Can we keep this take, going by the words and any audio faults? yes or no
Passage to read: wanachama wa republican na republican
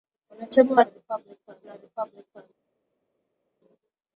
yes